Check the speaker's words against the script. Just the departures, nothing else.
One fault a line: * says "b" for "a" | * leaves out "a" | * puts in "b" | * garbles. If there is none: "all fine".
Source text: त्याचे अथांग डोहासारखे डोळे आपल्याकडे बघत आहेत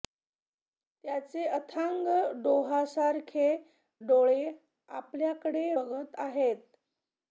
all fine